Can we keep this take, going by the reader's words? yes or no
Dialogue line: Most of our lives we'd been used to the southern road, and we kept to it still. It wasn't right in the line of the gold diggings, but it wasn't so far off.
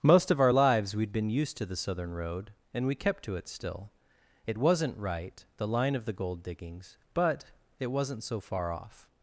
no